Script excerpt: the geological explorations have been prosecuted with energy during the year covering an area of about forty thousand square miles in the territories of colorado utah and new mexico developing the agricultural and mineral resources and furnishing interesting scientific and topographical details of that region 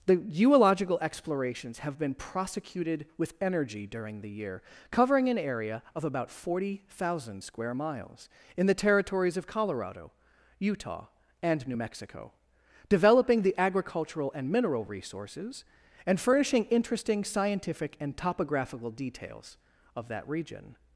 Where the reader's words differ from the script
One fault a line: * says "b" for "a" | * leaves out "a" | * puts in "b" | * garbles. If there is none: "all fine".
all fine